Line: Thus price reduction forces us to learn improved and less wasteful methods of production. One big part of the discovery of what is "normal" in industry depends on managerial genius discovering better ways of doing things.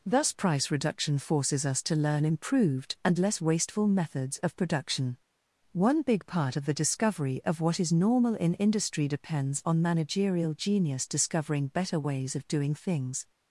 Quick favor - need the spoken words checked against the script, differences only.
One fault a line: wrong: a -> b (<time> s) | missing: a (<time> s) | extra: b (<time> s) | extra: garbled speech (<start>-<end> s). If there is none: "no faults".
no faults